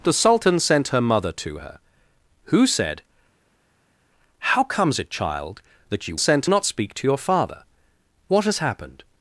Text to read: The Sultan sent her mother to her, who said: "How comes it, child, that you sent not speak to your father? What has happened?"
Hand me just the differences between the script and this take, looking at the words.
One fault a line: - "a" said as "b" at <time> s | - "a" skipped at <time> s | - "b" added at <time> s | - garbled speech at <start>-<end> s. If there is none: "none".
none